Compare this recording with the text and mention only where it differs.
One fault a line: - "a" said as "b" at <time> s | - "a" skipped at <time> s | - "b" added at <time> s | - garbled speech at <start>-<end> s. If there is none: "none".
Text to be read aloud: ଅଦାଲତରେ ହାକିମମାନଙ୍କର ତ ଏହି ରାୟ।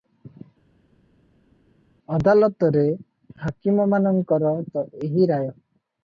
none